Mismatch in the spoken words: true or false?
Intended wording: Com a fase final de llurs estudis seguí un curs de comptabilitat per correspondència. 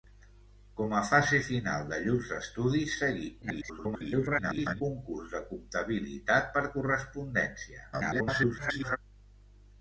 true